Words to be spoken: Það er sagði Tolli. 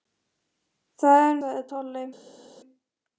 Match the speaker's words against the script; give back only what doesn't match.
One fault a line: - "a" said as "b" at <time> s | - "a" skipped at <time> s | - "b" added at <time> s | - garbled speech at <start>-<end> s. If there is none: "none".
none